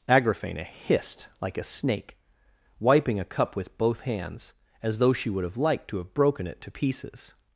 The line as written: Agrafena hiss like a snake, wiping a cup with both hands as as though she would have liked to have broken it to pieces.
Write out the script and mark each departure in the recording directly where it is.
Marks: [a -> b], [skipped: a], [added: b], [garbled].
Agrafena [hiss -> hissed] like a snake, wiping a cup with both hands as [skipped: as] though she would have liked to have broken it to pieces.